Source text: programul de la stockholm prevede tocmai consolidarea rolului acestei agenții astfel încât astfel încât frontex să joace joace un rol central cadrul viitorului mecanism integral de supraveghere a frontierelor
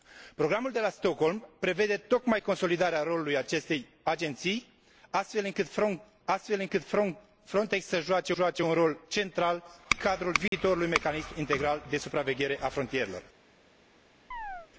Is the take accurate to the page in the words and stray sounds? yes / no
no